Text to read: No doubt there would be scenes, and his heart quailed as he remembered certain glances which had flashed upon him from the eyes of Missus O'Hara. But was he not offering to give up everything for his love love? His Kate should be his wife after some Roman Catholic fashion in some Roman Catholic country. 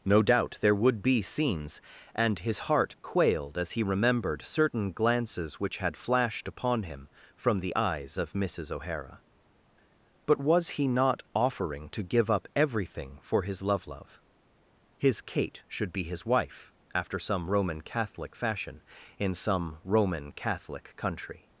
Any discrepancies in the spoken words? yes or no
no